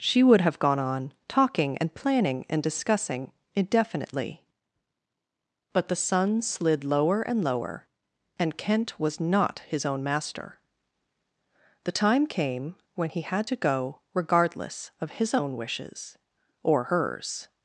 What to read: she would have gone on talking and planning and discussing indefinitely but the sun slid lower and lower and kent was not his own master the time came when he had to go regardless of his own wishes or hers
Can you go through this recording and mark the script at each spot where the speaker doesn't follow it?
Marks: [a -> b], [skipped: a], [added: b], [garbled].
she would have gone on talking and planning and discussing indefinitely but the sun slid lower and lower and kent was not his own master the time came when he had to go regardless of his own wishes or hers